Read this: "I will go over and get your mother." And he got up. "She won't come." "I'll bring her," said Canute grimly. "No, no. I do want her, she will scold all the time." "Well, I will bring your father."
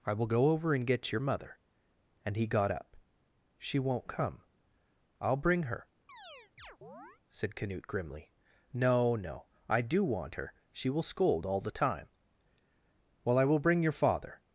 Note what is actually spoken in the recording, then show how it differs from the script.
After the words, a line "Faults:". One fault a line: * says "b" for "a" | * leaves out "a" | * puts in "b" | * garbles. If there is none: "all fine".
"I will go over and get your mother." And he got up. "She won't come." "I'll bring her," said Canute grimly. "No, no. I do want her, she will scold all the time." "Well, I will bring your father."
Faults:
all fine